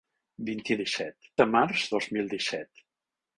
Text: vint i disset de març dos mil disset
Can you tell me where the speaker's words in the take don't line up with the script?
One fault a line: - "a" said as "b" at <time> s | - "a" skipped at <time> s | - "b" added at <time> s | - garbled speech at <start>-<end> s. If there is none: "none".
none